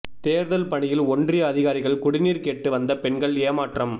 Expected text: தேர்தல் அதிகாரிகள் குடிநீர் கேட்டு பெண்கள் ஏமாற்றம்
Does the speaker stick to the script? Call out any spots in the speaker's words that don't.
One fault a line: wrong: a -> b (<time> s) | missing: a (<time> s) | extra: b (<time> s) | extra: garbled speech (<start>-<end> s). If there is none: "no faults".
extra: பணியில் ஒன்றிய (0.7 s)
extra: வந்த (2.7 s)